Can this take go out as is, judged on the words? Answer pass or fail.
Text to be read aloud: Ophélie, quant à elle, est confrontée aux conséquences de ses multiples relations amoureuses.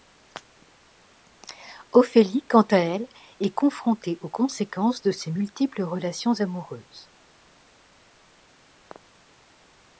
pass